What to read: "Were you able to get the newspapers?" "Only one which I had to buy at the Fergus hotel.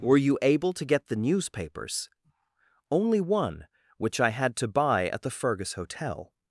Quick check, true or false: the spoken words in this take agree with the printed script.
true